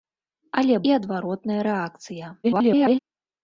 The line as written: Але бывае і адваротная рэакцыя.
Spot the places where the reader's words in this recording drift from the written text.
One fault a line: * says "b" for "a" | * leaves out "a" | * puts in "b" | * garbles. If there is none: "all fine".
* leaves out "бывае"
* garbles